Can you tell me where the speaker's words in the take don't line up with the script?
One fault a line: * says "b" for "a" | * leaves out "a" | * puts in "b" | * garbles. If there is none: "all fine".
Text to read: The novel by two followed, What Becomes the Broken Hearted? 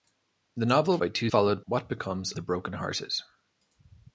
all fine